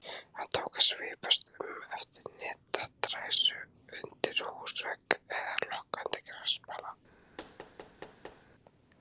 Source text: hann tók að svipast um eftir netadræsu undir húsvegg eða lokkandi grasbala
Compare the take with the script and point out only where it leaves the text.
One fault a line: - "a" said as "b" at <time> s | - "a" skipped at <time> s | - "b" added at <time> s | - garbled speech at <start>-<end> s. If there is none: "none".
none